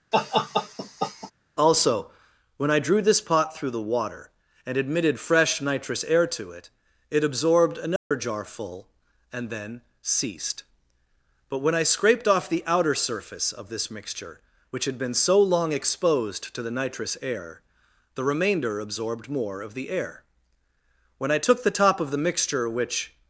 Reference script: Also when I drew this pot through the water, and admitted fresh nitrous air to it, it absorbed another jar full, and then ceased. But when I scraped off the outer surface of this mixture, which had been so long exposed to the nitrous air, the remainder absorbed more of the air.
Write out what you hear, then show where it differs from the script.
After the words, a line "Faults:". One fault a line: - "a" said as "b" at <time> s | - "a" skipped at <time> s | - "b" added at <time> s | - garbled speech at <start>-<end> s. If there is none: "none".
Also when I drew this pot through the water, and admitted fresh nitrous air to it, it absorbed another jar full, and then ceased. But when I scraped off the outer surface of this mixture, which had been so long exposed to the nitrous air, the remainder absorbed more of the air. When I took the top of the mixture which
Faults:
- "When I took the top of the mixture which" added at 21.2 s